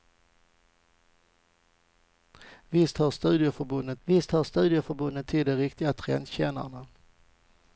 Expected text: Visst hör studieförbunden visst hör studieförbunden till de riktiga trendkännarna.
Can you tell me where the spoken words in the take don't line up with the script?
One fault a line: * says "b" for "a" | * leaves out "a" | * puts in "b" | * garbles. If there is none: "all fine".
all fine